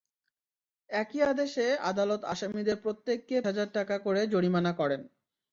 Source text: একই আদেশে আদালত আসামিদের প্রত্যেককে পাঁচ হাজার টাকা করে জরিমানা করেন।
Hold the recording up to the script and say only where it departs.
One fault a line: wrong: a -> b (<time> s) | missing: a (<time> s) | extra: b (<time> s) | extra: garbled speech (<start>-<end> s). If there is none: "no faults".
missing: পাঁচ (3.4 s)